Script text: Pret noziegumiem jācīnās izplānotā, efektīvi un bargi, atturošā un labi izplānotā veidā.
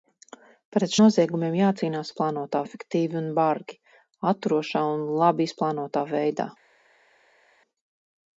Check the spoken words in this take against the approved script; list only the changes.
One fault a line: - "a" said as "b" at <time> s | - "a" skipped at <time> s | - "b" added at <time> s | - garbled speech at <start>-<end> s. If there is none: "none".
none